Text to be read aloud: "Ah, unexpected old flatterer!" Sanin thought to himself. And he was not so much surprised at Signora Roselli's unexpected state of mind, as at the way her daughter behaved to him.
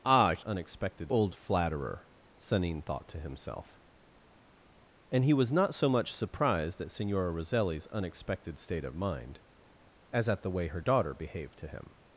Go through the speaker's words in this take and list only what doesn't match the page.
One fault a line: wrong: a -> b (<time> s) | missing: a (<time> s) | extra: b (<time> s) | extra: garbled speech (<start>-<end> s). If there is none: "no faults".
no faults